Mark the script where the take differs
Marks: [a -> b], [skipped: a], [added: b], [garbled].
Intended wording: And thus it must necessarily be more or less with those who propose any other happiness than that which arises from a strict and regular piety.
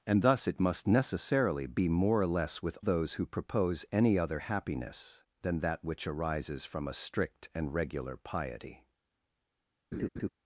And thus it must necessarily be more or less with those who propose any other happiness than that which arises from a strict and regular piety.